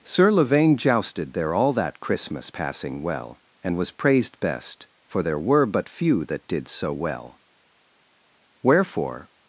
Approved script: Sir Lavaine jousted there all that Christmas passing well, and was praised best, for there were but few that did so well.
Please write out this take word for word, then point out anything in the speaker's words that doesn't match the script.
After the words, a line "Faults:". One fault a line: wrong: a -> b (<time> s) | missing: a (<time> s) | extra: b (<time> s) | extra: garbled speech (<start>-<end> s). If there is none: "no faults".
Sir Lavaine jousted there all that Christmas passing well, and was praised best, for there were but few that did so well. Wherefore
Faults:
extra: Wherefore (8.6 s)